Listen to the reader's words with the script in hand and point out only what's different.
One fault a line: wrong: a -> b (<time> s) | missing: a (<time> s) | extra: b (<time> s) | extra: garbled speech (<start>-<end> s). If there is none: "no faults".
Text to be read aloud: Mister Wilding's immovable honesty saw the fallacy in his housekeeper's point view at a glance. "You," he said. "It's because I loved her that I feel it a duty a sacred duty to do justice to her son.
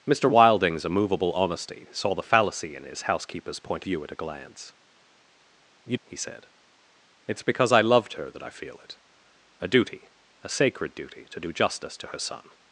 no faults